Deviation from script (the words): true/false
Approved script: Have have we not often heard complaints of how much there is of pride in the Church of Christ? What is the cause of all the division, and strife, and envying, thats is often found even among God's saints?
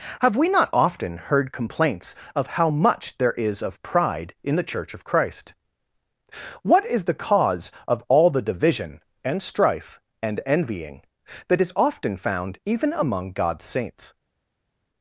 true